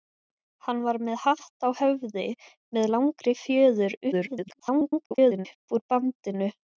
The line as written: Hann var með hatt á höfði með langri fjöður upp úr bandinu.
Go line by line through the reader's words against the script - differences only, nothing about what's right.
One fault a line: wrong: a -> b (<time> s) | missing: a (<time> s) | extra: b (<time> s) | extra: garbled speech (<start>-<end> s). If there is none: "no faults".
extra: garbled speech (4.1-5.5 s)